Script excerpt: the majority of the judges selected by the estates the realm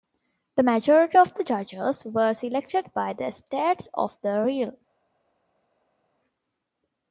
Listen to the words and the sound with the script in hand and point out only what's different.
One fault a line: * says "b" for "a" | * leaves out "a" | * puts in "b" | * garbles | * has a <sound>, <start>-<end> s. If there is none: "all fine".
* puts in "were"
* puts in "of"